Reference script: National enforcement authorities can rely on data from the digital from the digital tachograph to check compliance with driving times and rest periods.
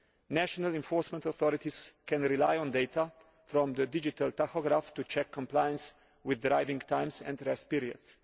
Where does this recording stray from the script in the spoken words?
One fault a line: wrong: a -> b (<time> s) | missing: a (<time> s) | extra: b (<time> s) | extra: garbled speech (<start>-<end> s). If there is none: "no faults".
missing: from the digital (4.3 s)